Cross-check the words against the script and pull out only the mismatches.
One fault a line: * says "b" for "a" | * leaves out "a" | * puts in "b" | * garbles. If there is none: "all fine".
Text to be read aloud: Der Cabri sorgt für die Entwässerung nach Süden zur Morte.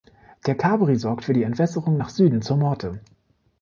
all fine